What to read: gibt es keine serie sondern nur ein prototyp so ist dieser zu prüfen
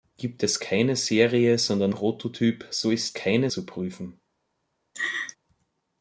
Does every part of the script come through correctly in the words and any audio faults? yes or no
no